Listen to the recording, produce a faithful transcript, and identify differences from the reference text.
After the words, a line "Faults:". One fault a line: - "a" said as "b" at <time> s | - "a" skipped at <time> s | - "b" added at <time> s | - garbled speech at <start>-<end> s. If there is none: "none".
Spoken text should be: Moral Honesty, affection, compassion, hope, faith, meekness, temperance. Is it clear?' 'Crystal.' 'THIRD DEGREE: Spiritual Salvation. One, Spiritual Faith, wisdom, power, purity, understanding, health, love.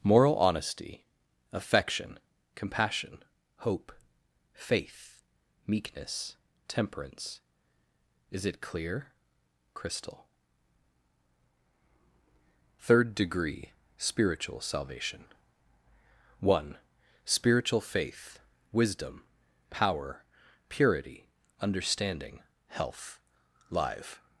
Moral Honesty, affection, compassion, hope, faith, meekness, temperance. Is it clear?' 'Crystal.' 'THIRD DEGREE: Spiritual Salvation. One, Spiritual Faith, wisdom, power, purity, understanding, health, live.
Faults:
- "love" said as "live" at 23.7 s